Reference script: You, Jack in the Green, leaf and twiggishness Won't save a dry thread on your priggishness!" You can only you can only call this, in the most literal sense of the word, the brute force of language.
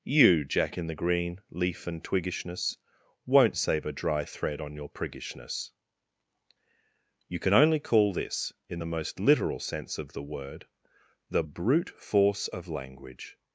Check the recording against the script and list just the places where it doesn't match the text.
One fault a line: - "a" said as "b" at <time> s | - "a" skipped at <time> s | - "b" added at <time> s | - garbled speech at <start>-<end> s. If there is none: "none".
- "you can only" skipped at 7.8 s